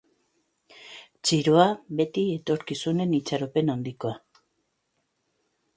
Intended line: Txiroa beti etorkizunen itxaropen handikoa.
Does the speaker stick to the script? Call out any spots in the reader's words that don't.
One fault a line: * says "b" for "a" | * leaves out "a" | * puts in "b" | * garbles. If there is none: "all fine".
all fine